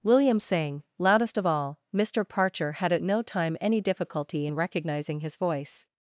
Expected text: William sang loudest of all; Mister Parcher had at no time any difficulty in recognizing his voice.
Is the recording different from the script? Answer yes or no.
no